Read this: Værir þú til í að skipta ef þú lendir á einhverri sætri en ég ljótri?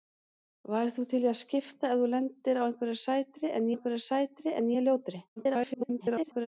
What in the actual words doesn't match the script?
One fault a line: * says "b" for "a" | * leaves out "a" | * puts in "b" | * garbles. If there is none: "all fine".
* puts in "einhverri sætri en"
* garbles